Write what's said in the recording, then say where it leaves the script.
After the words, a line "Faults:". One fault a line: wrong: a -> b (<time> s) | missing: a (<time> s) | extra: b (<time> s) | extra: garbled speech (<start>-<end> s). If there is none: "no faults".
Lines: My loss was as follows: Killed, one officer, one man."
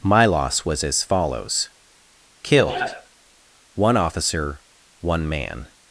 My loss was as follows: Killed, one officer, one man."
Faults:
no faults